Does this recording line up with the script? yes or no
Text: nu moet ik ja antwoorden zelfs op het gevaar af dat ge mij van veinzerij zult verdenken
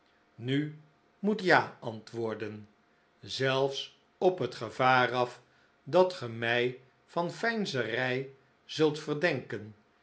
no